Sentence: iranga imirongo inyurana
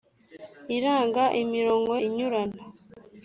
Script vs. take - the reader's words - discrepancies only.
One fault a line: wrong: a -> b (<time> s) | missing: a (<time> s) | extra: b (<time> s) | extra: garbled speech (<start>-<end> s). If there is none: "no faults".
no faults